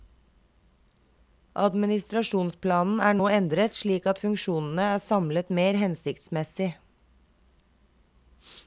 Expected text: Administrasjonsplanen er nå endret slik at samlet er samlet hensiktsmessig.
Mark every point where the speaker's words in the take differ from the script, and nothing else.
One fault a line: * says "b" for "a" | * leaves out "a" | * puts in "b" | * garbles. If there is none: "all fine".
* says "funksjonene" for "samlet"
* puts in "mer"